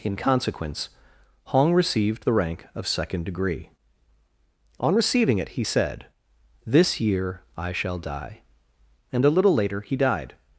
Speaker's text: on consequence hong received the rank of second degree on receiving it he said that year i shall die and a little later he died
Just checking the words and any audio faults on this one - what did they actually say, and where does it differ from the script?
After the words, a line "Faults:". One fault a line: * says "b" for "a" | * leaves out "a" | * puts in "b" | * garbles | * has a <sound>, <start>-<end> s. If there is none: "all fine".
in consequence hong received the rank of second degree on receiving it he said this year i shall die and a little later he died
Faults:
* says "in" for "on"
* says "this" for "that"